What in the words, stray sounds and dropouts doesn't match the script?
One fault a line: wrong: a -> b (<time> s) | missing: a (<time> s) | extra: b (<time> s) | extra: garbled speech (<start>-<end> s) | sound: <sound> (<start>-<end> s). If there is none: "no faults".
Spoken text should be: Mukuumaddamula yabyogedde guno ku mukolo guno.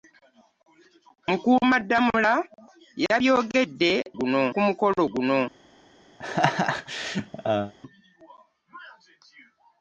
sound: laugh (6.2-7.7 s)